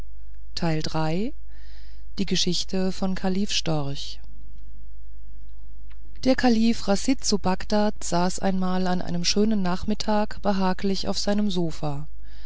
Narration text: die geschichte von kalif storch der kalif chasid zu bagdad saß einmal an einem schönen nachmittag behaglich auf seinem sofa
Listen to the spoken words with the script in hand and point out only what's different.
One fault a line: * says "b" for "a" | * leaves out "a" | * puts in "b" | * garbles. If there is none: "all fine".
all fine